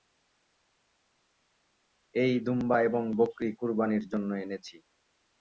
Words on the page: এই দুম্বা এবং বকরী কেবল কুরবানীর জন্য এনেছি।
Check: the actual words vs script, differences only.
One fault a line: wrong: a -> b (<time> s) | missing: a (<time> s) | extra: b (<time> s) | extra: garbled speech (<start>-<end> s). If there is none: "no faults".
missing: কেবল (3.5 s)